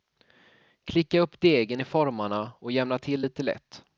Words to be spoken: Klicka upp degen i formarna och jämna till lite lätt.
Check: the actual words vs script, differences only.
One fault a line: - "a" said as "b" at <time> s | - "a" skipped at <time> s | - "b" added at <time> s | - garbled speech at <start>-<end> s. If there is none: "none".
none